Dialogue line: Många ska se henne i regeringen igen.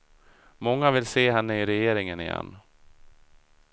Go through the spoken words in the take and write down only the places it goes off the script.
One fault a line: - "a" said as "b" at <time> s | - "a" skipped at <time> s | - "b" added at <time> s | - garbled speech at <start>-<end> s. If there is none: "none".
- "ska" said as "vill" at 0.9 s